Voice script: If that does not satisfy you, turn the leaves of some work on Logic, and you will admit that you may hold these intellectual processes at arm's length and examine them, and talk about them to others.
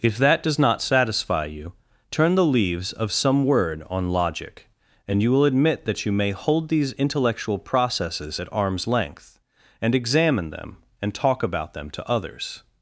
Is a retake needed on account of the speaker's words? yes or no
yes